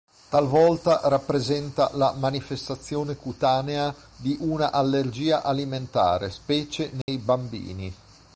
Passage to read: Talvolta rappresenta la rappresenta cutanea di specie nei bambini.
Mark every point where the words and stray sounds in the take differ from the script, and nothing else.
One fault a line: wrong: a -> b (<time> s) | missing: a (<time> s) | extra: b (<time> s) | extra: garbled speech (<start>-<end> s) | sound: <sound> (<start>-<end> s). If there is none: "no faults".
wrong: rappresenta -> manifestazione (2.2 s)
extra: una allergia alimentare (4.4 s)
sound: dropout (7.0-7.1 s)